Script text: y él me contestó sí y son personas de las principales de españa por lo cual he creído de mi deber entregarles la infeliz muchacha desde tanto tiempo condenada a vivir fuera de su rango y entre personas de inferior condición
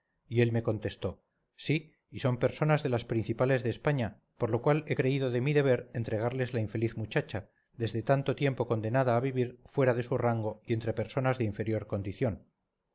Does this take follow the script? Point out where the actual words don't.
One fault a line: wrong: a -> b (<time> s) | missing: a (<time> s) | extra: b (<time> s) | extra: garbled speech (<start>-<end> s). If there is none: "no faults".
no faults